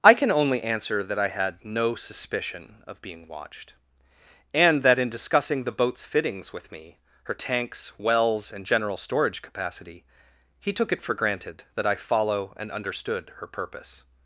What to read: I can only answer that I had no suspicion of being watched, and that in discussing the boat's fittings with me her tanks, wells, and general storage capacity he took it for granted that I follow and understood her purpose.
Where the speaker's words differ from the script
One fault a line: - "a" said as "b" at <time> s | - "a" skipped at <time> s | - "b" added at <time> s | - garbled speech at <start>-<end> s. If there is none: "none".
none